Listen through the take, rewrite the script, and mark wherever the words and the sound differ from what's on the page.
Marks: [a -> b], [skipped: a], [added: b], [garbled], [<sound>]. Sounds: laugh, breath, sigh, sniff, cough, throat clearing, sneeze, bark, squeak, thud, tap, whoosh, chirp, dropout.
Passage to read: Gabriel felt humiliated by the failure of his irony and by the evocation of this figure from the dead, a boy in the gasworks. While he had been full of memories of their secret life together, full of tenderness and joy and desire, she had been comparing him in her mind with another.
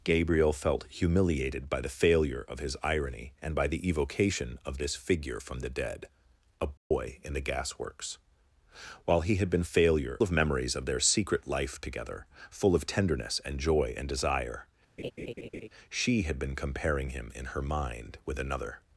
Gabriel felt humiliated by the failure of his irony and by the evocation of this figure from the dead, a boy [dropout] in the gasworks. While he had been [full -> failure] of memories of their secret life together, full of tenderness and joy and desire, [laugh] she had been comparing him in her mind with another.